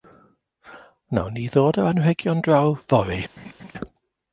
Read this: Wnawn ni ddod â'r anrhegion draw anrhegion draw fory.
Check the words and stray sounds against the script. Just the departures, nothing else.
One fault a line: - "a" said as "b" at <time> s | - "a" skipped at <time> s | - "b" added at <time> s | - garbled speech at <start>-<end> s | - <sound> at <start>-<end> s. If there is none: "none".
- "anrhegion draw" skipped at 2.7 s
- laugh at 3.4-3.7 s